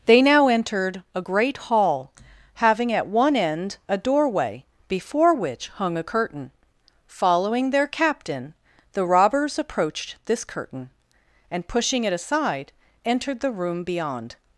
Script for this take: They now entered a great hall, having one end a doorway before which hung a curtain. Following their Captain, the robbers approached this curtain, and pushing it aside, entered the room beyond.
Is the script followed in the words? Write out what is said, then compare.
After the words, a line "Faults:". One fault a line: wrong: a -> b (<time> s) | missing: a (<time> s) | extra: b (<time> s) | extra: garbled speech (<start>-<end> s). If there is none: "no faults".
They now entered a great hall, having at one end a doorway before which hung a curtain. Following their Captain, the robbers approached this curtain, and pushing it aside, entered the room beyond.
Faults:
extra: at (2.9 s)